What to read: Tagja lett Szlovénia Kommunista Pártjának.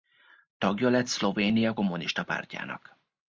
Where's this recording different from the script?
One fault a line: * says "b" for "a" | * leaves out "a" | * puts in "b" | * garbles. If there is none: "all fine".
all fine